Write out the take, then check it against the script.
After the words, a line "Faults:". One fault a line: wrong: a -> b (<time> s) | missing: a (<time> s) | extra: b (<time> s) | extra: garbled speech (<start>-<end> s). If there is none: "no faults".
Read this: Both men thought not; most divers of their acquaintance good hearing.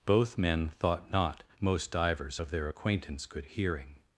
Both men thought not; most divers of their acquaintance good hearing.
Faults:
no faults